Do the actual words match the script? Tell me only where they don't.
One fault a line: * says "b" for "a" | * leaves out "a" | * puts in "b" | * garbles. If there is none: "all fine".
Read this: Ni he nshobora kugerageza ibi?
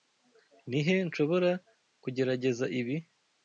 all fine